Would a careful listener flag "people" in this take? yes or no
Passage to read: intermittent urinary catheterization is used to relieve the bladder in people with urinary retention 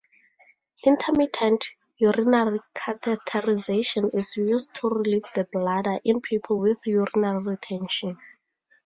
no